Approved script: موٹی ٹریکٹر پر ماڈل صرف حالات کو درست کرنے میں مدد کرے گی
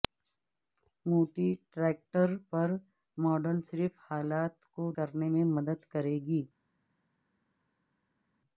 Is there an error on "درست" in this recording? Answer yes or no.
yes